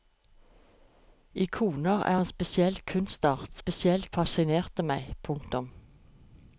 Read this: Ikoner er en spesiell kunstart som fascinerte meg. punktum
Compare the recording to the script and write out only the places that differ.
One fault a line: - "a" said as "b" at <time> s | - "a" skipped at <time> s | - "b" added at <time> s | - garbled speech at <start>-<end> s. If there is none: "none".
- "som" said as "spesiell" at 3.6 s